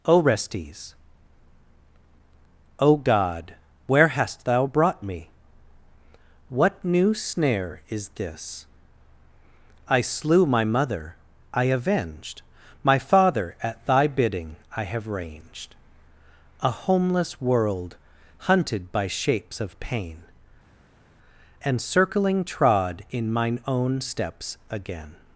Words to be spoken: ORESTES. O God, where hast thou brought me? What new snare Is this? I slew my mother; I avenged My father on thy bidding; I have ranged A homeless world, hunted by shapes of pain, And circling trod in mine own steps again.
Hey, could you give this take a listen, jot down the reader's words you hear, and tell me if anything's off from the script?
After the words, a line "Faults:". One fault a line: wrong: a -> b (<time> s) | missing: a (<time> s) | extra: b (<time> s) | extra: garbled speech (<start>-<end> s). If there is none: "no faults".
ORESTES. O God, where hast thou brought me? What new snare Is this? I slew my mother; I avenged My father at thy bidding; I have ranged A homeless world, hunted by shapes of pain, And circling trod in mine own steps again.
Faults:
wrong: on -> at (13.6 s)